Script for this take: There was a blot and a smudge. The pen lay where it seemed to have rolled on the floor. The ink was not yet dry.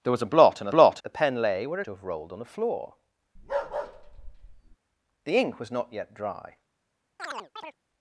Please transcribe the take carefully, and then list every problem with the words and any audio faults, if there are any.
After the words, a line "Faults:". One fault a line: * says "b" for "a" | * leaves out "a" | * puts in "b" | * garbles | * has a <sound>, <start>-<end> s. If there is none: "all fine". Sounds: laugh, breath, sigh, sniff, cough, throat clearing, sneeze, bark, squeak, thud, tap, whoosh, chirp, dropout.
There was a blot and a blot. The pen lay where to have rolled on the floor. The ink was not yet dry.
Faults:
* says "blot" for "smudge"
* leaves out "it seemed"
* has a bark, 3.4-4.8 s
* has a chirp, 7.2-7.8 s